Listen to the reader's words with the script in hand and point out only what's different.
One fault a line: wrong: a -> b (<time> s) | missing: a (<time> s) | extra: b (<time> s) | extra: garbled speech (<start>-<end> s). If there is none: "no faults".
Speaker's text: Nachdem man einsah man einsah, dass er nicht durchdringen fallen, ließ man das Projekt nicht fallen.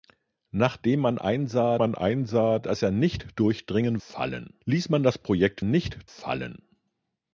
no faults